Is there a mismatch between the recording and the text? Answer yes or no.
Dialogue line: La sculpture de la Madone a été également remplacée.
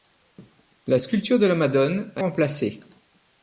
yes